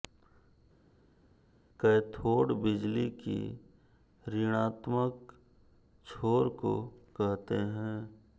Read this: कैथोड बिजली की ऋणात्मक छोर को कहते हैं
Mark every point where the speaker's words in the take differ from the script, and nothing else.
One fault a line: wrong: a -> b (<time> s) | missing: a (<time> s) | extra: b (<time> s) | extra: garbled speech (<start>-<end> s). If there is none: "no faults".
no faults